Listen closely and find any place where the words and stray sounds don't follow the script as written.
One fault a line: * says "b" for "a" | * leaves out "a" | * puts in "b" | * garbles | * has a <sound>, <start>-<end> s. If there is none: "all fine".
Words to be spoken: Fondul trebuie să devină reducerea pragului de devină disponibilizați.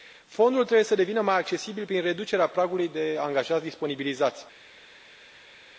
* puts in "mai accesibil prin"
* says "angajați" for "devină"